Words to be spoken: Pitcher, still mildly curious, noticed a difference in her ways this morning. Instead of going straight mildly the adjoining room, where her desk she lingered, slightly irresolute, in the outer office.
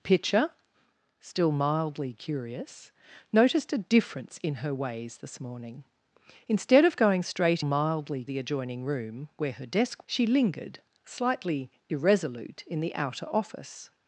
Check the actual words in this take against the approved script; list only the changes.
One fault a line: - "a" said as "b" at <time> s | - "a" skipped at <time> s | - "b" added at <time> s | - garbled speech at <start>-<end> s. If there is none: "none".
none